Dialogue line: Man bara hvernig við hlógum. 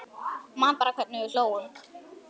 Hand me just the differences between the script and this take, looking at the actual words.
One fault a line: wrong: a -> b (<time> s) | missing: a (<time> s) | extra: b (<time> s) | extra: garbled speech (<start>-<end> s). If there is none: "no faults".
no faults